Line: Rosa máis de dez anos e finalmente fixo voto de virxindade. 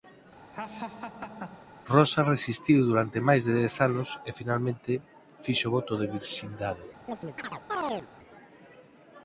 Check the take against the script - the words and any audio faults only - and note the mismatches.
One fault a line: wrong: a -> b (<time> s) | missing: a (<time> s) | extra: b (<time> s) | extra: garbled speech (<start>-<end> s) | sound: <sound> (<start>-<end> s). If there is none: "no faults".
sound: laugh (0.5-1.7 s)
extra: resistiu durante (2.3 s)
sound: chirp (7.1-8.1 s)